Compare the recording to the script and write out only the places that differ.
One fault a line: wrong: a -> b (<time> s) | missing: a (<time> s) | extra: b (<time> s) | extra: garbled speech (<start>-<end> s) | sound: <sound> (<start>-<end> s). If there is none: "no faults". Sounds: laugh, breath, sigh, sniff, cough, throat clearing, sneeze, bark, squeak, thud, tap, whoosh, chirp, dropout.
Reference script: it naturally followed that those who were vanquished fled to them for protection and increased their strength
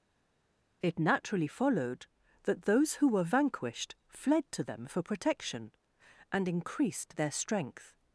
no faults